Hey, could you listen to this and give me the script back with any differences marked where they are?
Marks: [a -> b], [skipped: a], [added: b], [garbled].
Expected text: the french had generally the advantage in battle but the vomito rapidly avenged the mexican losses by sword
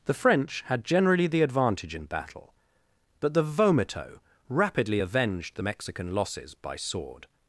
the french had generally the advantage in battle but the vomito rapidly avenged the mexican losses by sword